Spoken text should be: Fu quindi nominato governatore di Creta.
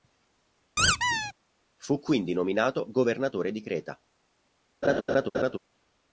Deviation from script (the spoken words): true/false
false